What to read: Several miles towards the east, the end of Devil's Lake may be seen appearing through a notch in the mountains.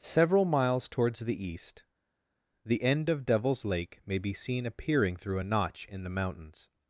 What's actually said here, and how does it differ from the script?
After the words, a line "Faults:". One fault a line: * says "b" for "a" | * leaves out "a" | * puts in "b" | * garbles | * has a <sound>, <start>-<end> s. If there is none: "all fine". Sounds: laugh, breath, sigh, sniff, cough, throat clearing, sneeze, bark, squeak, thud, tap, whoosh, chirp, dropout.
Several miles towards the east, the end of Devil's Lake may be seen appearing through a notch in the mountains.
Faults:
all fine